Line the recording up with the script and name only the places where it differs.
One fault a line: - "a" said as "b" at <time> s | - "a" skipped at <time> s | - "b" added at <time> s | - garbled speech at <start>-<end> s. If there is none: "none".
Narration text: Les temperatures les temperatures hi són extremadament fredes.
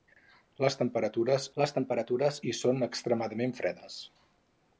none